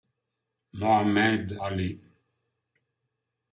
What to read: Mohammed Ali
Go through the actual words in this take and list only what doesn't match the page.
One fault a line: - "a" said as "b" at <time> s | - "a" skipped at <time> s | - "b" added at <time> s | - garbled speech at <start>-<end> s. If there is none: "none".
none